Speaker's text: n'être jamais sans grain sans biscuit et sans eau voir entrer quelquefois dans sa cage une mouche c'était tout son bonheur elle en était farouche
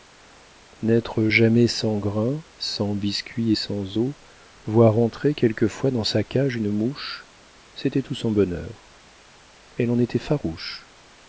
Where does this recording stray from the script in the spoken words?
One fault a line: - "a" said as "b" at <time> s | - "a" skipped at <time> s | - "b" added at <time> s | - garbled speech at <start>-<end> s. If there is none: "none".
none